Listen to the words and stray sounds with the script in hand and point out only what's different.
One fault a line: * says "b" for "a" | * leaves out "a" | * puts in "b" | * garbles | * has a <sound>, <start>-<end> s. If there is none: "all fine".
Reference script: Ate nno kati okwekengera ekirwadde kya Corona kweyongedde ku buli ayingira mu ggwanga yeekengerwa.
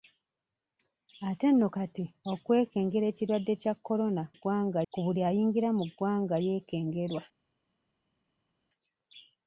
* says "ggwanga" for "kweyongedde"